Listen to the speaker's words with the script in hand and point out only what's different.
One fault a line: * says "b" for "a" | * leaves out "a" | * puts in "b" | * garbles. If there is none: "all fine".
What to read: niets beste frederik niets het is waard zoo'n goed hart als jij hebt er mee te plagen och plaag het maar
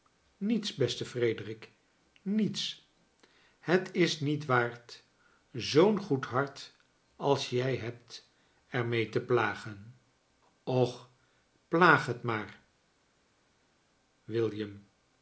* puts in "niet"